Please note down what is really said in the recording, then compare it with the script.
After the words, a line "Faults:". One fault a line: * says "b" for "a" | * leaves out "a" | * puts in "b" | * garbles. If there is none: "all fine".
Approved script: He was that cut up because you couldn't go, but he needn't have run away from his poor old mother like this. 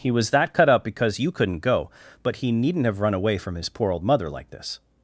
He was that cut up because you couldn't go, but he needn't have run away from his poor old mother like this.
Faults:
all fine